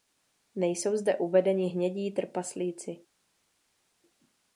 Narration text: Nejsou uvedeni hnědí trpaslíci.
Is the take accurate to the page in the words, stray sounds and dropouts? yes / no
no